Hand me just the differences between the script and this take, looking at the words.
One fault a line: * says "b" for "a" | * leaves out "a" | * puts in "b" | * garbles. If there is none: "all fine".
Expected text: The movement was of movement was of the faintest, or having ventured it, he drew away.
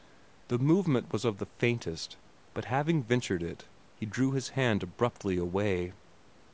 * leaves out "movement was of"
* says "but" for "or"
* puts in "his hand abruptly"